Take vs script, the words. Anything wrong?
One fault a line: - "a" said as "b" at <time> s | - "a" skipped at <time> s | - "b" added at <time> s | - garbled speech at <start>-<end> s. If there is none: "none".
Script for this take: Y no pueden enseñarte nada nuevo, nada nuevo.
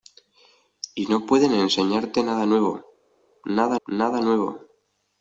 - "nada" added at 3.9 s